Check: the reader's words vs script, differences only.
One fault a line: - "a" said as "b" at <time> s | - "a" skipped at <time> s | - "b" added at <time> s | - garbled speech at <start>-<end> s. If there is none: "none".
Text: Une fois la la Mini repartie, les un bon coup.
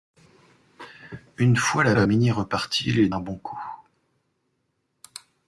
none